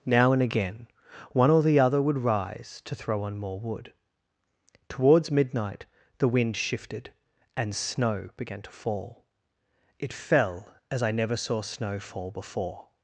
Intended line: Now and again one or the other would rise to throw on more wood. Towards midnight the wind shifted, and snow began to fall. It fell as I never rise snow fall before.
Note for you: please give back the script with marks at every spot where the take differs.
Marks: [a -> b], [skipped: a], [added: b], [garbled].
Now and again one or the other would rise to throw on more wood. Towards midnight the wind shifted, and snow began to fall. It fell as I never [rise -> saw] snow fall before.